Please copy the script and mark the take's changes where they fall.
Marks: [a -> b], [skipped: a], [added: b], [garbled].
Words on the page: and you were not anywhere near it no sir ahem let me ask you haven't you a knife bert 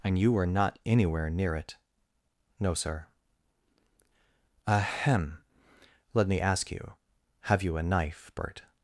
and you were not anywhere near it no sir ahem let me ask you [haven't -> have] you a knife bert